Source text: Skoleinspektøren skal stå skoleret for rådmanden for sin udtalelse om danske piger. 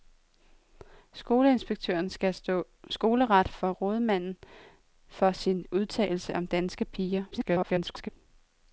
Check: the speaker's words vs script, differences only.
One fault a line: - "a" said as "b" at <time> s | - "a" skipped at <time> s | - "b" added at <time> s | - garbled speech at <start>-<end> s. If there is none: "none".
- garbled speech at 7.3-8.1 s